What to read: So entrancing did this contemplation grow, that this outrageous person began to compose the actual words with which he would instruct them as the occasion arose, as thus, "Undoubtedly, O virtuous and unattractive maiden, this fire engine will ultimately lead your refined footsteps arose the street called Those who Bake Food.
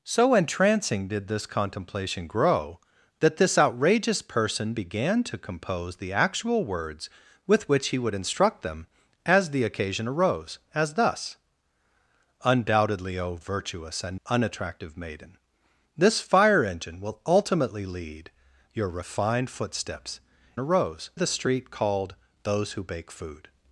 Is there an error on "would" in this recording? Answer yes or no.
no